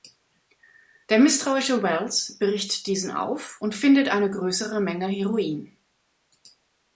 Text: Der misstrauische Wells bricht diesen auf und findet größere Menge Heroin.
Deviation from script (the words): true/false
true